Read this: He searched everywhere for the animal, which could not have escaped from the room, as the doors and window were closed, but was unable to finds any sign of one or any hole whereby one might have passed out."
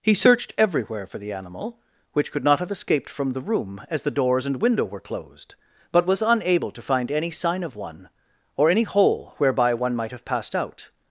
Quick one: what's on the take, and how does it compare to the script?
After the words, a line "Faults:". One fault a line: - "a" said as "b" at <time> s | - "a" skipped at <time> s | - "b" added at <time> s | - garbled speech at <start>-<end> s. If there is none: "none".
He searched everywhere for the animal, which could not have escaped from the room, as the doors and window were closed, but was unable to find any sign of one or any hole whereby one might have passed out."
Faults:
- "finds" said as "find" at 6.8 s